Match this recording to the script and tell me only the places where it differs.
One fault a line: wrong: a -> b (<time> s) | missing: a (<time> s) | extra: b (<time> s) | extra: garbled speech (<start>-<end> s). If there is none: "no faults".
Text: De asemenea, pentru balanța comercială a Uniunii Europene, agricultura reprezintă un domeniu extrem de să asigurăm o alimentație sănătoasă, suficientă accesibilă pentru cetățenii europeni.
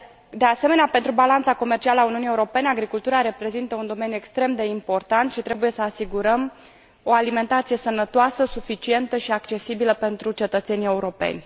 extra: important și trebuie (4.7 s)
extra: și (9.2 s)